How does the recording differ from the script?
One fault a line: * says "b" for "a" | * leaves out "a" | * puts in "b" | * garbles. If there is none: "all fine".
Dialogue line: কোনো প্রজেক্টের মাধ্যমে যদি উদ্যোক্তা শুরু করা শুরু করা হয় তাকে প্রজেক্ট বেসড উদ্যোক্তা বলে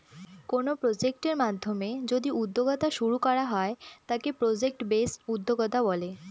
* leaves out "শুরু করা"